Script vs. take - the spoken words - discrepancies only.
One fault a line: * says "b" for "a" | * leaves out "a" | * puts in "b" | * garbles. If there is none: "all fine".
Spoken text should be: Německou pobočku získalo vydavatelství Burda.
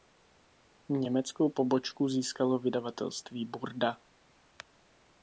all fine